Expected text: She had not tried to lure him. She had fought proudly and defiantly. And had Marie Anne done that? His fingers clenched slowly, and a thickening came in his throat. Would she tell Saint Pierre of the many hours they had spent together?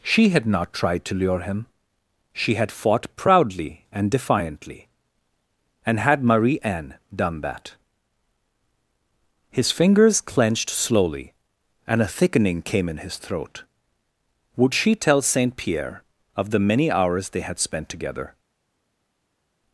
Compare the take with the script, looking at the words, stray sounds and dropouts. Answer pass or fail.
pass